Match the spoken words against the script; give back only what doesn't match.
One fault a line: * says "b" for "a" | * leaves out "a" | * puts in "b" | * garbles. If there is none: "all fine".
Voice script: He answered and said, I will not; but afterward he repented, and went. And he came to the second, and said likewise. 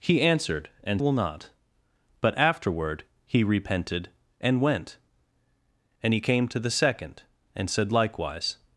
* leaves out "said I"